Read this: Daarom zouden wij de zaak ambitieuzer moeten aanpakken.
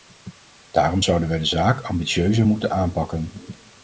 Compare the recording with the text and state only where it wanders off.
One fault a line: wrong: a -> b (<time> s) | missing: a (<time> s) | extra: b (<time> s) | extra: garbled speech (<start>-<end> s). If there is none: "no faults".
no faults